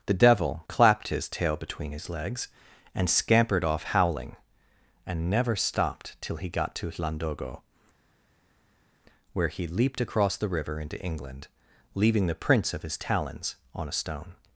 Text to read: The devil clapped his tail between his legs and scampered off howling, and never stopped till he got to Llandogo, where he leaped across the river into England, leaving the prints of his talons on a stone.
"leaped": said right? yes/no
yes